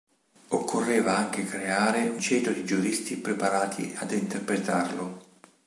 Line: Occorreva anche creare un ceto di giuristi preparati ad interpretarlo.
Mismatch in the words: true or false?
true